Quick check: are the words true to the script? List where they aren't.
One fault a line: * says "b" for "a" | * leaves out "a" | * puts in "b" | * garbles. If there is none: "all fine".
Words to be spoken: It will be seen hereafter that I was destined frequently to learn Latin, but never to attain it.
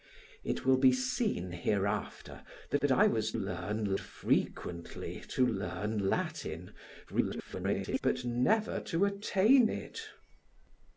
* puts in "that"
* says "learn" for "destined"
* garbles